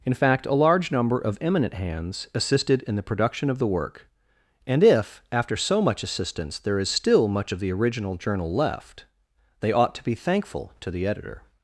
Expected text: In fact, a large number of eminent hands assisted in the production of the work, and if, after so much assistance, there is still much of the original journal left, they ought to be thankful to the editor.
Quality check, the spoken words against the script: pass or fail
pass